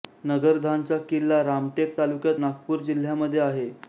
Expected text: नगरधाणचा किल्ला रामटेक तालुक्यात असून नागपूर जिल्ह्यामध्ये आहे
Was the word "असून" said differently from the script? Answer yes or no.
yes